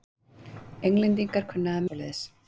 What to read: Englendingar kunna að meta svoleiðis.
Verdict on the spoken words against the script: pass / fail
fail